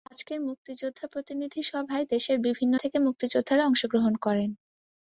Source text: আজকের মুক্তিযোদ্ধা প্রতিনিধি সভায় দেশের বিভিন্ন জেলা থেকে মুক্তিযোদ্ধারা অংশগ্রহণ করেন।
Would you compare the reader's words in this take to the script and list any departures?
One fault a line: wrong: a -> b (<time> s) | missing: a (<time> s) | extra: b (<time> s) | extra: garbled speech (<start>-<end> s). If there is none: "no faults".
missing: জেলা (2.7 s)